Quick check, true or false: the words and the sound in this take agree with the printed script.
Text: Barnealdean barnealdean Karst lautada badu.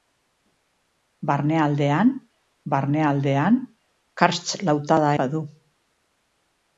true